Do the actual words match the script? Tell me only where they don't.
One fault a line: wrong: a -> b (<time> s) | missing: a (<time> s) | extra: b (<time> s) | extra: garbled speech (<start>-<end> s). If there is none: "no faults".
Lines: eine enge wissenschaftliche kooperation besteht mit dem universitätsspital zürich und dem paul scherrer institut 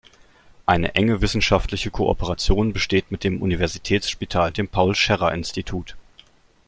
missing: zürich und (4.5 s)